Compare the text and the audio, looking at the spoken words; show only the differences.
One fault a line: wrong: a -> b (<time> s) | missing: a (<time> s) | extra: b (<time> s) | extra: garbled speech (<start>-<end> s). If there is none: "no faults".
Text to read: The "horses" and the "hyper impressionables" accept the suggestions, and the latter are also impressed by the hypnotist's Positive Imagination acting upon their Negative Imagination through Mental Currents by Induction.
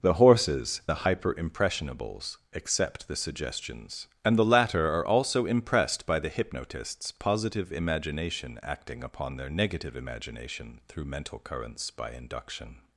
missing: and (0.8 s)